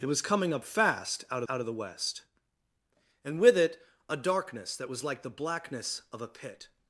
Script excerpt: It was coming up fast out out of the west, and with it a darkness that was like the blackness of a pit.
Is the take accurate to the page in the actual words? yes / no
yes